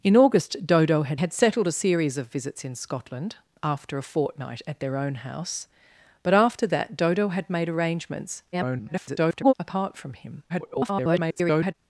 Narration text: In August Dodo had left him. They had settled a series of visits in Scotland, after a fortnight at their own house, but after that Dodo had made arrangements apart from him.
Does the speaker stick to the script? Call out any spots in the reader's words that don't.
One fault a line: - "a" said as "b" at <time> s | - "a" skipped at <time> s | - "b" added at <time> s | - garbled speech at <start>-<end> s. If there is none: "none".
- "left him They" skipped at 1.2 s
- garbled speech at 8.5-9.5 s
- garbled speech at 10.5-11.7 s